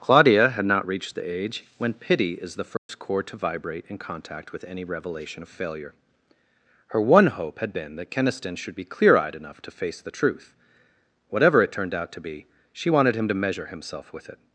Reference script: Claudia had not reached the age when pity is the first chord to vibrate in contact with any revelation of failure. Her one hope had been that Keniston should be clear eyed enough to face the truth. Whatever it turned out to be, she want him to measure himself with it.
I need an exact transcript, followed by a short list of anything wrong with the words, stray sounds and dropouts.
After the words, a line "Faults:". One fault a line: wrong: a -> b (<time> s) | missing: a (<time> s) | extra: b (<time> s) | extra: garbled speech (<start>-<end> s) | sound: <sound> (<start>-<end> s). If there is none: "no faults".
Claudia had not reached the age when pity is the first chord to vibrate in contact with any revelation of failure. Her one hope had been that Keniston should be clear eyed enough to face the truth. Whatever it turned out to be, she wanted him to measure himself with it.
Faults:
sound: dropout (2.8-2.9 s)
wrong: want -> wanted (12.9 s)